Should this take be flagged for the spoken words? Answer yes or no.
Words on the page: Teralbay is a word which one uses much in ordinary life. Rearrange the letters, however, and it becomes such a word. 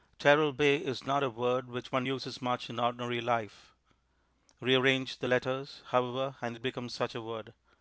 yes